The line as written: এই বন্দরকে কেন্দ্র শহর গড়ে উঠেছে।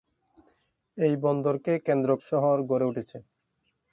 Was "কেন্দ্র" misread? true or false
false